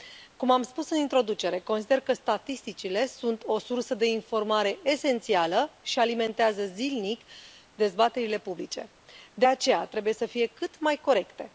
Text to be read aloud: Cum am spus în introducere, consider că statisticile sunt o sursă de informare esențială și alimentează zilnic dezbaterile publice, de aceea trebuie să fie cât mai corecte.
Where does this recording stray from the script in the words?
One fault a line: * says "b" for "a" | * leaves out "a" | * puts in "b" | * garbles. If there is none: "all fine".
all fine